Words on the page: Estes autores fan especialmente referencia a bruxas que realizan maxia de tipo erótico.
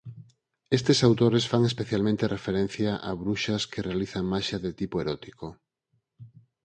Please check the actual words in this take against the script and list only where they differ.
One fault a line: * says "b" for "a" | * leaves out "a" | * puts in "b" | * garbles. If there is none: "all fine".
all fine